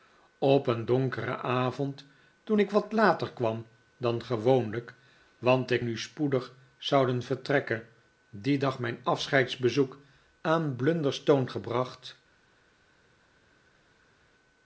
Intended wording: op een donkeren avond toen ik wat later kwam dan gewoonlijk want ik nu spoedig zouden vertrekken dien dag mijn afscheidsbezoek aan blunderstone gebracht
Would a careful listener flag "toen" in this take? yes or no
no